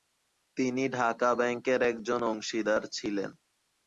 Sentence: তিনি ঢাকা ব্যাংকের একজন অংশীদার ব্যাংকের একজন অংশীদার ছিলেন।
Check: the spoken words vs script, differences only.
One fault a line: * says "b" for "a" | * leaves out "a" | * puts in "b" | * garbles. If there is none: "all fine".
* leaves out "ব্যাংকের একজন অংশীদার"